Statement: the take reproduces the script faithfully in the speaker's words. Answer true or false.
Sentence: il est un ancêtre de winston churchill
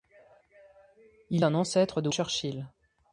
false